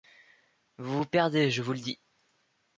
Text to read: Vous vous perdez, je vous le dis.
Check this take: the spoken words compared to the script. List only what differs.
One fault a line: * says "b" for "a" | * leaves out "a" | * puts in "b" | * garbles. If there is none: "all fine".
all fine